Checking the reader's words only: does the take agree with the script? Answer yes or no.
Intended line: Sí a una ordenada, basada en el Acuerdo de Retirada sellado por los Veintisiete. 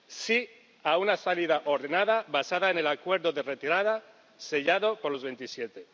no